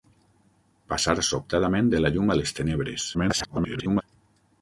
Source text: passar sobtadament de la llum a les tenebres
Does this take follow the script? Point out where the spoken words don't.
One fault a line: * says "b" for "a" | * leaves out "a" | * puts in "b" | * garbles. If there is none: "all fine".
* garbles